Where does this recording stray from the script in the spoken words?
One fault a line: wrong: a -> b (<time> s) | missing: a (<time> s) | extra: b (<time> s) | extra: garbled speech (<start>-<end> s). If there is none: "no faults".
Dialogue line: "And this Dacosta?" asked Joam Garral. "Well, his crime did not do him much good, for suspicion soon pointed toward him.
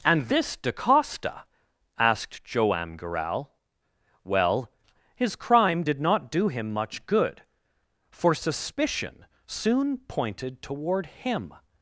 no faults